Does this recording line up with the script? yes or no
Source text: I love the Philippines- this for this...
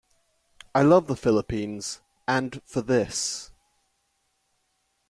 no